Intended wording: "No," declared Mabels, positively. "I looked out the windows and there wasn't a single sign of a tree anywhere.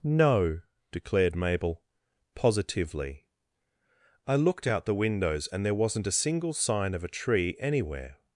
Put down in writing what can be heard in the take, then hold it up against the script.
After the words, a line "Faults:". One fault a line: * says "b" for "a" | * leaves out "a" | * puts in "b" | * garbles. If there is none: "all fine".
"No," declared Mabel, positively. "I looked out the windows and there wasn't a single sign of a tree anywhere.
Faults:
* says "Mabel" for "Mabels"